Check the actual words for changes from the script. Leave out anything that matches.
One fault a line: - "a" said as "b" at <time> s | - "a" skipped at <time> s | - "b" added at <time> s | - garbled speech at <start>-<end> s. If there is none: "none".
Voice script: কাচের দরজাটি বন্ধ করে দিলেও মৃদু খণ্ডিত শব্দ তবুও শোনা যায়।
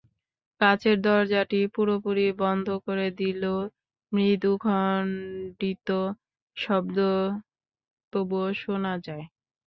- "পুরোপুরি" added at 1.8 s